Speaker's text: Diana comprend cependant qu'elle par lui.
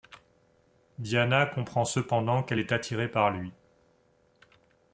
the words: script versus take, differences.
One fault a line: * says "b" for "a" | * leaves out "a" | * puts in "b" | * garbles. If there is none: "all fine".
* puts in "est attirée"